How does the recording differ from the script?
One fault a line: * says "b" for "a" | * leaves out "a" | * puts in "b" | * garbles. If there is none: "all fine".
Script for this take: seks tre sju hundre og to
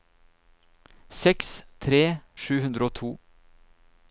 all fine